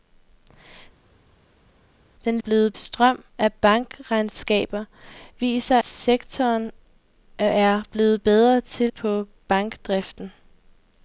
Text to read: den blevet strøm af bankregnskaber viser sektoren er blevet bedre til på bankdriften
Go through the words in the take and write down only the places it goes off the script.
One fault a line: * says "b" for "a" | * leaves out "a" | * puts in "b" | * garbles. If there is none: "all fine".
all fine